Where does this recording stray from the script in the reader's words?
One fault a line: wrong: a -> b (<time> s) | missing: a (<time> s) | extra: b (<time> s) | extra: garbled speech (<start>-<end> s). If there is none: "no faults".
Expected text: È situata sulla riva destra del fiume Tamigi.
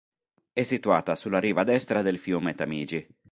no faults